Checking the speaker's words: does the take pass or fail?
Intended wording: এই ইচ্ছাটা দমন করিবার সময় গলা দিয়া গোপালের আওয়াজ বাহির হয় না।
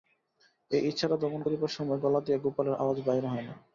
pass